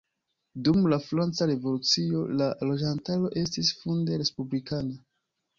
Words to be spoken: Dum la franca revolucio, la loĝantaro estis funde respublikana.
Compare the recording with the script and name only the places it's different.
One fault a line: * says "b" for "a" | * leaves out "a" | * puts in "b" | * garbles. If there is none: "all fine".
all fine